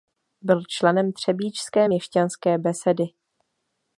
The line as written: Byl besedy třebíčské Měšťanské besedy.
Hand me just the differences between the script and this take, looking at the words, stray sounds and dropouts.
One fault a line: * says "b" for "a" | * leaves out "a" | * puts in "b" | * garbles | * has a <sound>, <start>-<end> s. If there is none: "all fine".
* says "členem" for "besedy"